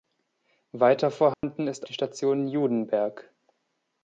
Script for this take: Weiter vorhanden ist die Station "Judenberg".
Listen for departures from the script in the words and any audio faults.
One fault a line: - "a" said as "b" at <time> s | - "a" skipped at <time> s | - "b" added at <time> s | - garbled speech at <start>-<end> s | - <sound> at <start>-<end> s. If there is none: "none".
- dropout at 1.3-1.4 s